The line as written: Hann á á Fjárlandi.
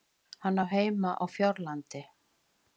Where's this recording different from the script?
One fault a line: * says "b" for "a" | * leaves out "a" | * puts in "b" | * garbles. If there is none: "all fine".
* puts in "heima"